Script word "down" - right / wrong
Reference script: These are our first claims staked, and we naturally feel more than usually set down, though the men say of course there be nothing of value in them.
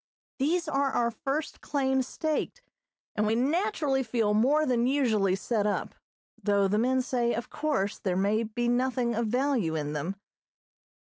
wrong